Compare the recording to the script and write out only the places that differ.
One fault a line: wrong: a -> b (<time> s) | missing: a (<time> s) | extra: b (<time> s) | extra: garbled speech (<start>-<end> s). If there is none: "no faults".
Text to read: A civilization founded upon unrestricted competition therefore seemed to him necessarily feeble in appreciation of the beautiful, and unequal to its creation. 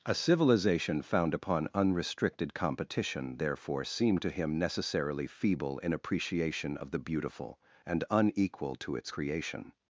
wrong: founded -> found (1.0 s)